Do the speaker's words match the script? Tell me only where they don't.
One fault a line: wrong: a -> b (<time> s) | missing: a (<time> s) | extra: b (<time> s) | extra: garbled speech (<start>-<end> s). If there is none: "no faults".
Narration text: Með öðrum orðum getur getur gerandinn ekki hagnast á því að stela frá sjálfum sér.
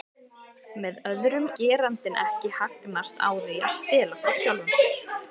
missing: orðum getur getur (1.4 s)